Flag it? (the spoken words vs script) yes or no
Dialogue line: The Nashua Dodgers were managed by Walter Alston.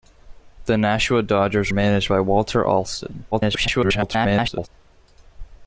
yes